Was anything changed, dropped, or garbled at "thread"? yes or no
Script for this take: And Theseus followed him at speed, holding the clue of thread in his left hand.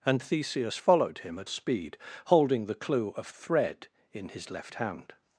no